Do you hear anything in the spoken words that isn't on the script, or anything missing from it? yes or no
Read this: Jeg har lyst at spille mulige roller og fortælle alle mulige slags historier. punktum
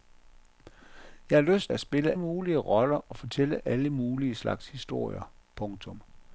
no